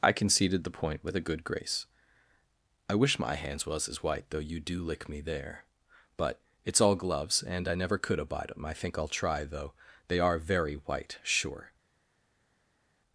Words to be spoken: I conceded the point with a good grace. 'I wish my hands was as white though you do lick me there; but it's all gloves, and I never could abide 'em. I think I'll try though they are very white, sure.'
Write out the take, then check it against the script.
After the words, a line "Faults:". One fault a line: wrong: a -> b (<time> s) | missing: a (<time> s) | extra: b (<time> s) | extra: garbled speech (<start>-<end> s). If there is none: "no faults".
I conceded the point with a good grace. 'I wish my hands was as white though you do lick me there; but it's all gloves, and I never could abide 'em. I think I'll try though they are very white, sure.'
Faults:
no faults